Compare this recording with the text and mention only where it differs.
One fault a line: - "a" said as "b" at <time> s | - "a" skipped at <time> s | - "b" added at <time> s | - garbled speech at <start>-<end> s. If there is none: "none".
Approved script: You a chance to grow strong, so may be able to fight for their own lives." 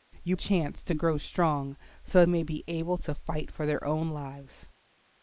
none